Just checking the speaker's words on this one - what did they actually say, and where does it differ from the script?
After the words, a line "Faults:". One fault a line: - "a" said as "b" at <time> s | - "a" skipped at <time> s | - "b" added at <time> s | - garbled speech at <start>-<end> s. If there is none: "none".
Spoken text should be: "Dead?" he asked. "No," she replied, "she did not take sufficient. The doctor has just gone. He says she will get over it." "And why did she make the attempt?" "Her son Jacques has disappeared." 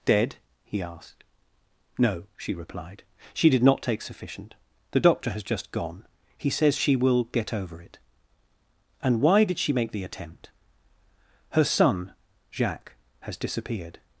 "Dead?" he asked. "No," she replied, "she did not take sufficient. The doctor has just gone. He says she will get over it." "And why did she make the attempt?" "Her son Jacques has disappeared."
Faults:
none